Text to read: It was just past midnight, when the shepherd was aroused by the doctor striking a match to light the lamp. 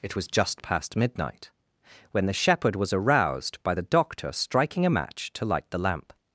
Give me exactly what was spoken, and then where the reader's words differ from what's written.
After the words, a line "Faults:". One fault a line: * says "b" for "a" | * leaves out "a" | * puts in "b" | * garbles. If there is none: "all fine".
It was just past midnight, when the shepherd was aroused by the doctor striking a match to light the lamp.
Faults:
all fine